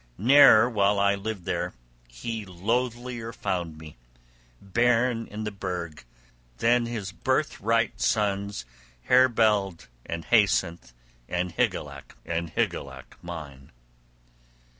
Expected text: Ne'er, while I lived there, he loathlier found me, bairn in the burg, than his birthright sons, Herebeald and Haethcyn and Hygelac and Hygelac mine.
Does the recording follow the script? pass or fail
pass